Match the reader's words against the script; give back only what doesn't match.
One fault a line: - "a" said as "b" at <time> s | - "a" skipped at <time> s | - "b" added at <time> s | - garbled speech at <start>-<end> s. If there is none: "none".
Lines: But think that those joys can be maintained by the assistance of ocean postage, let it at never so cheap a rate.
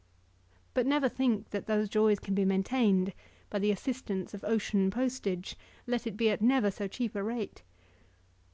- "never" added at 0.9 s
- "be" added at 6.2 s